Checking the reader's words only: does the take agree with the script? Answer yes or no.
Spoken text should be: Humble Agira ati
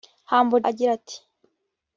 yes